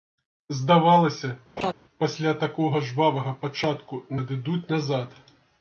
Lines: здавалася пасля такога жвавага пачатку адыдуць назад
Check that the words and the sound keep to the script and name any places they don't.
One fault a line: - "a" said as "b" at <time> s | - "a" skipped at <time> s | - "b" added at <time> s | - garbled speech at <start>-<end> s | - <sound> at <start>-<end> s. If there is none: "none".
- laugh at 1.6-1.7 s